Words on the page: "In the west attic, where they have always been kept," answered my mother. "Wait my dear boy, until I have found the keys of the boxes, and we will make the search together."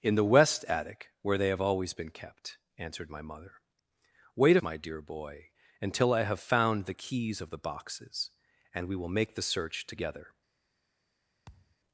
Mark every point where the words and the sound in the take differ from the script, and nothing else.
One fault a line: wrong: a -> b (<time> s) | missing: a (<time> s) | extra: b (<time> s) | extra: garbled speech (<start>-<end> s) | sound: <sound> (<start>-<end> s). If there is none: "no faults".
sound: thud (11.5-11.8 s)